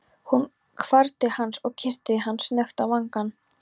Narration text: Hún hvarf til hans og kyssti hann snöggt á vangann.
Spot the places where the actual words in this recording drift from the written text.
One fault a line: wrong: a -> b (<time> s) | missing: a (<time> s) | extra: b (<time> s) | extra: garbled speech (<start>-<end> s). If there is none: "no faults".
no faults